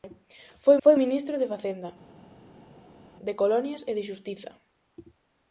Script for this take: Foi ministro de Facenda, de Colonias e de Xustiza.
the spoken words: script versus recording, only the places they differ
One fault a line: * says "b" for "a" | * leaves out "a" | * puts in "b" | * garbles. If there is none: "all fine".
* puts in "foi"